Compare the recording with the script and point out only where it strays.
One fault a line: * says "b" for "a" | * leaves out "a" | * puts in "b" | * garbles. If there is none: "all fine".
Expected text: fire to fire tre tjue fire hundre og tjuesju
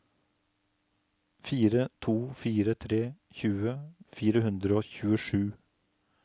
all fine